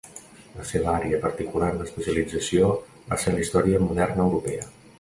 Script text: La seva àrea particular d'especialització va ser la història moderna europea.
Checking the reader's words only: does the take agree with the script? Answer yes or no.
yes